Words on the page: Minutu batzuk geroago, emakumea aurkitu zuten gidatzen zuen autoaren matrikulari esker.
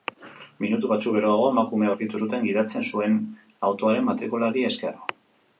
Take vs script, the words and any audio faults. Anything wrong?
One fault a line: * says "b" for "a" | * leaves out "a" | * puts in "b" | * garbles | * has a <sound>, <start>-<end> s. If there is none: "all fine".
all fine